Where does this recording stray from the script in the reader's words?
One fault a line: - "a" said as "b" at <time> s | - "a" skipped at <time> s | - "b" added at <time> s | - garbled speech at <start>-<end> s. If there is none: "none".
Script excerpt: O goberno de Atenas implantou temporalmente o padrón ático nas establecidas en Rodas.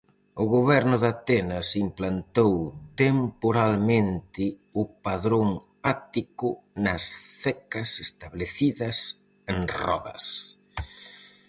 - "cecas" added at 7.4 s